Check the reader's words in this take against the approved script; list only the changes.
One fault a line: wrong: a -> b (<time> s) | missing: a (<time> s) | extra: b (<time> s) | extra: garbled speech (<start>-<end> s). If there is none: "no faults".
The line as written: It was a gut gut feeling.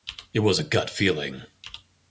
missing: gut (0.9 s)